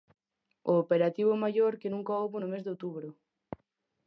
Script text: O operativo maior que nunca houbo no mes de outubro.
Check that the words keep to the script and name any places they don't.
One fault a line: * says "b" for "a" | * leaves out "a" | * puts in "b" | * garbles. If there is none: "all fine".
all fine